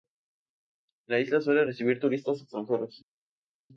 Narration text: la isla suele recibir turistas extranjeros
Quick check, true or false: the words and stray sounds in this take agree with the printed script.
true